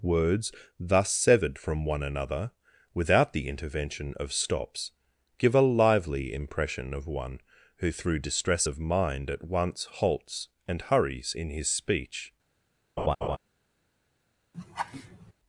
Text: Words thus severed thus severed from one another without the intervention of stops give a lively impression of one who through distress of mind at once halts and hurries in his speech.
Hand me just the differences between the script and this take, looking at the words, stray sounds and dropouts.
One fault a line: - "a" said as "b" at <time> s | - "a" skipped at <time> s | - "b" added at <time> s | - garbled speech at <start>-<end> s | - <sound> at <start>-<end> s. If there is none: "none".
- "thus severed" skipped at 1.6 s
- laugh at 13.0-13.4 s
- laugh at 14.5-15.3 s